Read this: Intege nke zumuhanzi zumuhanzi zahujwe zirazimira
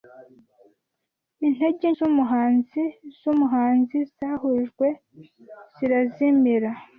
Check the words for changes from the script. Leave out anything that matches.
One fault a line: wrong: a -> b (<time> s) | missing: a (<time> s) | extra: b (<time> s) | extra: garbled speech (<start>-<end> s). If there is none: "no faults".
missing: nke (1.9 s)